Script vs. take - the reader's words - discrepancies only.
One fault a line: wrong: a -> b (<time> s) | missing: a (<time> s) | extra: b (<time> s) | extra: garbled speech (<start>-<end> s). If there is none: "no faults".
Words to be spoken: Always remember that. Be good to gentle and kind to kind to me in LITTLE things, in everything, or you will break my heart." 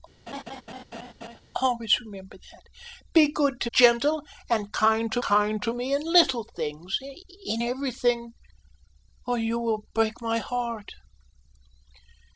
no faults